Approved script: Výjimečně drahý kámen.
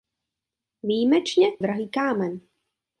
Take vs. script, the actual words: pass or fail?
pass